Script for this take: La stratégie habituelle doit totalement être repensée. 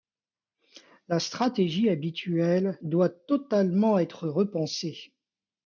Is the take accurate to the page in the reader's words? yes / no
yes